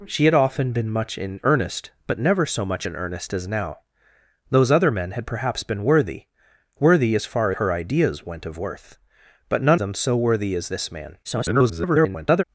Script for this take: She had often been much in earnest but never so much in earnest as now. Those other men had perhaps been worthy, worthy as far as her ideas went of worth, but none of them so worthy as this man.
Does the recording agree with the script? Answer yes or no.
no